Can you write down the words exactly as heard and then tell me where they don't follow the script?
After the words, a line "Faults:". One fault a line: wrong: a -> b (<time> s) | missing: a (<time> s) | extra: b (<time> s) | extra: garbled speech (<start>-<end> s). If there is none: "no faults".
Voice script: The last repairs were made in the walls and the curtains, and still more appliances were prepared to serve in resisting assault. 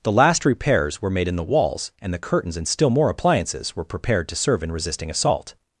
The last repairs were made in the walls and the curtains, and still more appliances were prepared to serve in resisting assault.
Faults:
no faults